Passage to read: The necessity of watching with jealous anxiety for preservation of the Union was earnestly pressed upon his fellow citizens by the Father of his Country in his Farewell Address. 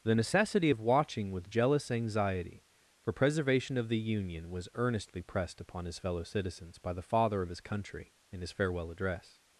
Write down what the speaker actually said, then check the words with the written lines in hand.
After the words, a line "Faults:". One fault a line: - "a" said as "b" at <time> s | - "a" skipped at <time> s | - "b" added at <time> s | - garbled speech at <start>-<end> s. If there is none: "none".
The necessity of watching with jealous anxiety for preservation of the Union was earnestly pressed upon his fellow citizens by the Father of his Country in his Farewell Address.
Faults:
none